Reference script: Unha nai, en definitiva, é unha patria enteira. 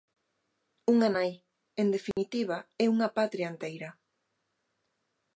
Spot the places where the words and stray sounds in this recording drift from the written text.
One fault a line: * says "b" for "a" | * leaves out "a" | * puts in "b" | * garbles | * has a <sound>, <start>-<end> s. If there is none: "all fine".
* has a dropout, 2.1-2.2 s